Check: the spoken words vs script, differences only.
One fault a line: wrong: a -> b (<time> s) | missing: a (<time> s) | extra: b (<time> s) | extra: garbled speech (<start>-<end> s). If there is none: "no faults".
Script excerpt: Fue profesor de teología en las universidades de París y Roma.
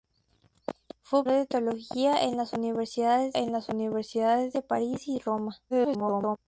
missing: profesor (1.3 s)
extra: en las universidades (3.4 s)
extra: garbled speech (5.7-6.4 s)